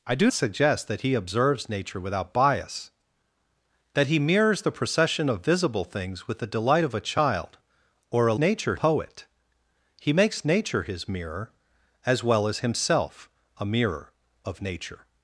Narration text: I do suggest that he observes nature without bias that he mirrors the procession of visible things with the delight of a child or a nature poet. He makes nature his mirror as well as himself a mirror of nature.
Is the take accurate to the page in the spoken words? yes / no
yes